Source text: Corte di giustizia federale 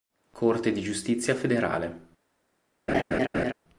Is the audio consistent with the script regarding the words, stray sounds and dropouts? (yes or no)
no